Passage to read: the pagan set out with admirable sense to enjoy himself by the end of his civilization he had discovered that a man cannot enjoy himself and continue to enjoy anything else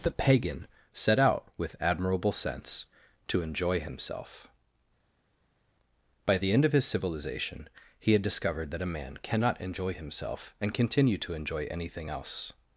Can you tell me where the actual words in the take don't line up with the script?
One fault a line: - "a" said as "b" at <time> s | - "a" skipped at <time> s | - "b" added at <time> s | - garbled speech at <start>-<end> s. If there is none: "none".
none